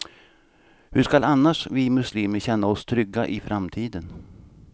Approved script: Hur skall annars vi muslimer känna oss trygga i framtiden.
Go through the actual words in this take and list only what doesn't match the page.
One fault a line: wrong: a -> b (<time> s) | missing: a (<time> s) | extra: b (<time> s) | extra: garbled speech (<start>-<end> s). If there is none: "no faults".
no faults